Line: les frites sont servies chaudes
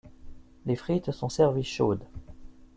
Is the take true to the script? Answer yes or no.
yes